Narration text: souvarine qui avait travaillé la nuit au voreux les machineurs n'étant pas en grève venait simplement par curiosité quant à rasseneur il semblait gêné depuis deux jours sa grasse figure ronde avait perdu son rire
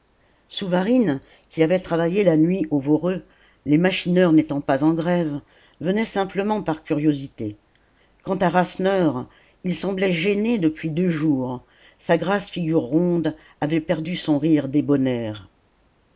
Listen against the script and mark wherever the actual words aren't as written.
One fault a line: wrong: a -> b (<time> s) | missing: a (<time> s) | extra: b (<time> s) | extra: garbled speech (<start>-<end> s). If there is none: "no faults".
no faults